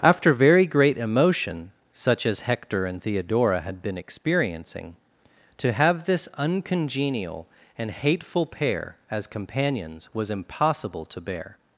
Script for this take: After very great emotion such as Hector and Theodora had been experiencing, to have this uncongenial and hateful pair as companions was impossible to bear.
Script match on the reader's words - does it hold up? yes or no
yes